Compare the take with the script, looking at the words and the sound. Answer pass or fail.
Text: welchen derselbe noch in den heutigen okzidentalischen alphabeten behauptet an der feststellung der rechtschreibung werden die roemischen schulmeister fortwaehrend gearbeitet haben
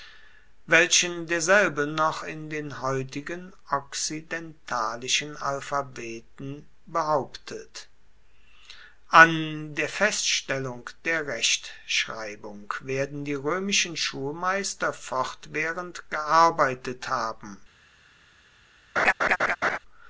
fail